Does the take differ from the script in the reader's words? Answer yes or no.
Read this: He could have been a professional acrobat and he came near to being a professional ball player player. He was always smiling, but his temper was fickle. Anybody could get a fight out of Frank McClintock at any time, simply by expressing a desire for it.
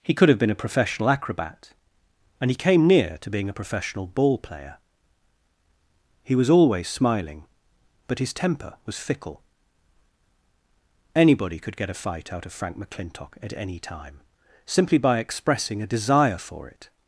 yes